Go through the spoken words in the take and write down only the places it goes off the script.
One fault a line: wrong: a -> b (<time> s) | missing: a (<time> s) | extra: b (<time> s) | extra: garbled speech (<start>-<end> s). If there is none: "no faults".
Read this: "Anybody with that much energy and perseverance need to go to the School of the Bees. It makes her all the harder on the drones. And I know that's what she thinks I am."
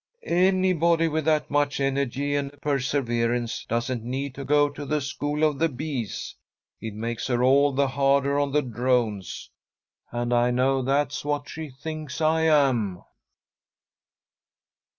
extra: doesn't (3.7 s)